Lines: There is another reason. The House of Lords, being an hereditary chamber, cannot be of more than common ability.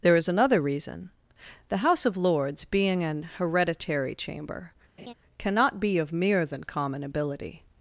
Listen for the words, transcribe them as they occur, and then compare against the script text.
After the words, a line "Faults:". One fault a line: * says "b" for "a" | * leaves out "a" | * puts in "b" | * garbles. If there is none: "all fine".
There is another reason. The House of Lords, being an hereditary chamber, cannot be of mere than common ability.
Faults:
* says "mere" for "more"